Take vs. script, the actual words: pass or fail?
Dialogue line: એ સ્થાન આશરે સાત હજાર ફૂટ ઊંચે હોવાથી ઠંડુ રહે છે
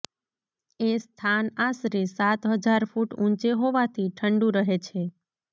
pass